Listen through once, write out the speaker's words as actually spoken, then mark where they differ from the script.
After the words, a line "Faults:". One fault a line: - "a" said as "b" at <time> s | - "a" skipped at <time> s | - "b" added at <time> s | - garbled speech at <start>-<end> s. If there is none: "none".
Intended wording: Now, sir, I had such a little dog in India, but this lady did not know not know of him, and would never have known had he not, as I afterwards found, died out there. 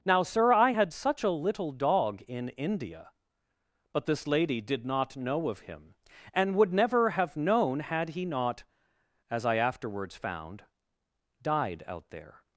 Now, sir, I had such a little dog in India, but this lady did not know of him, and would never have known had he not, as I afterwards found, died out there.
Faults:
- "not know" skipped at 5.5 s